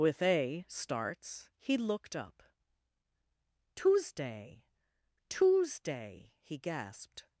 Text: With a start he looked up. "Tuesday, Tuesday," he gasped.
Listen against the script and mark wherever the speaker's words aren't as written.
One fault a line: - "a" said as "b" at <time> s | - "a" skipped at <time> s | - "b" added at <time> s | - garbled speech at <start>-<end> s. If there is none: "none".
- "start" said as "starts" at 0.7 s